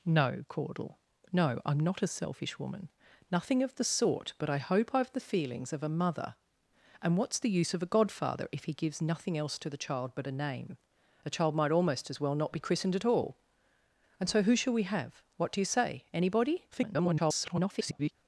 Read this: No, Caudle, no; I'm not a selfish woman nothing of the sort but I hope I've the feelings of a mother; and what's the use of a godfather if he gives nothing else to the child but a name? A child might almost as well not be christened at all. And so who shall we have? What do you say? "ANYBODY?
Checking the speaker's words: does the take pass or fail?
fail